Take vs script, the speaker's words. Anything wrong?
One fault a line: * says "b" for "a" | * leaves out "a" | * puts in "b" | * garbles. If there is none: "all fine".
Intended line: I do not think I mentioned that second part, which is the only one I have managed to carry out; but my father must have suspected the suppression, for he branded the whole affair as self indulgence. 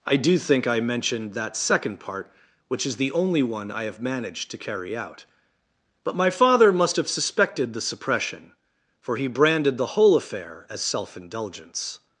* leaves out "not"